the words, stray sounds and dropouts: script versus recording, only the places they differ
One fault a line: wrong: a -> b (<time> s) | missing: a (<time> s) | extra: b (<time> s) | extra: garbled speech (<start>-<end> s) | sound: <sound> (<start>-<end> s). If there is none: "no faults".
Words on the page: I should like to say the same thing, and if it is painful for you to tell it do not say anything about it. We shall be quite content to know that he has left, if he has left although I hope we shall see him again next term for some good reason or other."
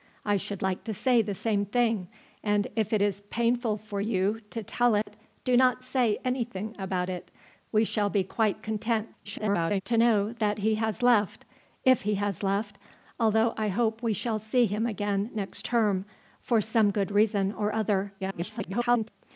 sound: dropout (5.0-5.1 s)
extra: garbled speech (9.2-9.8 s)
extra: garbled speech (18.2-19.1 s)